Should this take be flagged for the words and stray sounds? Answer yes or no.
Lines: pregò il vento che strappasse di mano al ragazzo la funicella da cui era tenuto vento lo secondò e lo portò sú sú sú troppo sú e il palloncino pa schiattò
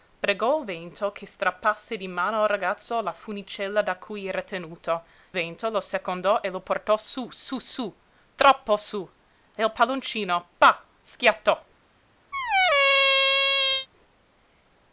yes